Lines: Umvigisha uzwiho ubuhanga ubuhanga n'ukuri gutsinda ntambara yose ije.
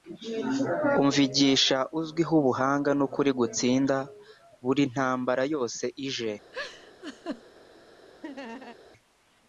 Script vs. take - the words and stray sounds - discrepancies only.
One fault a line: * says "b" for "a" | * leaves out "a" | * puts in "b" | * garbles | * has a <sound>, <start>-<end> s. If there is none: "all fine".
* leaves out "ubuhanga"
* puts in "buri"
* has a laugh, 6.5-7.4 s
* has a laugh, 8.2-8.8 s